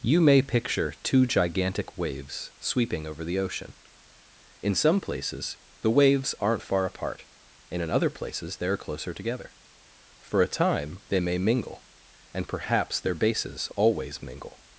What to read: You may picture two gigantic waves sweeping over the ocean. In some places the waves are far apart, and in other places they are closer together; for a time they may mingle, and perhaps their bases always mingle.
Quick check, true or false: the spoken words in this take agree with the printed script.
false